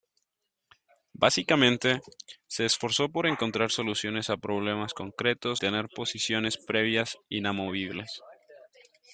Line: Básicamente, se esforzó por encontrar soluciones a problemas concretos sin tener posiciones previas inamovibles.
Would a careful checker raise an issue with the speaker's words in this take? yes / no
yes